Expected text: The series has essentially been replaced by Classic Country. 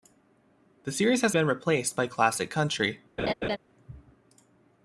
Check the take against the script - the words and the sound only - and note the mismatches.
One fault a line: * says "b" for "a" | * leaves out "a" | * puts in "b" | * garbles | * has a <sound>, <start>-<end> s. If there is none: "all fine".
* leaves out "essentially"
* has a laugh, 3.2-3.6 s